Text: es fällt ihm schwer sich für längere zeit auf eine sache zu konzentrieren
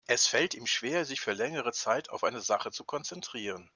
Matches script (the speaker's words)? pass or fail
pass